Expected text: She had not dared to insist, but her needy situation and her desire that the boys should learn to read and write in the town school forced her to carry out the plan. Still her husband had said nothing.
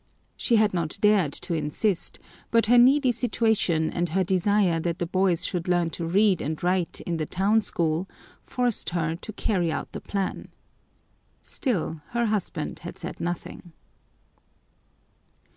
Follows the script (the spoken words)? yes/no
yes